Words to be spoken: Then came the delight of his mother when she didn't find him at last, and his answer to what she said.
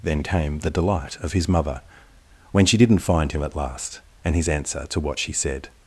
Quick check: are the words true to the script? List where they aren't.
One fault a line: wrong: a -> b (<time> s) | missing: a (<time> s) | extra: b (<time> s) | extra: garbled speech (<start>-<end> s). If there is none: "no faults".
no faults